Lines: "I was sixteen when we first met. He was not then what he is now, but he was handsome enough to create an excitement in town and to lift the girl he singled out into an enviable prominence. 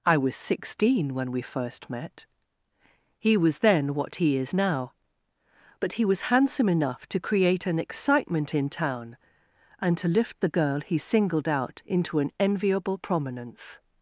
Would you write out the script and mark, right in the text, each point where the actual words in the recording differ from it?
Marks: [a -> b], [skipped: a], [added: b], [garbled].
"I was sixteen when we first met. He was [skipped: not] then what he is now, but he was handsome enough to create an excitement in town and to lift the girl he singled out into an enviable prominence.